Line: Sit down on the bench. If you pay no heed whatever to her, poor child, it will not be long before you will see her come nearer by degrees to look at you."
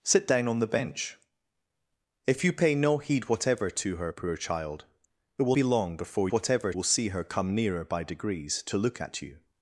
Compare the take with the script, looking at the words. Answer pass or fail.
fail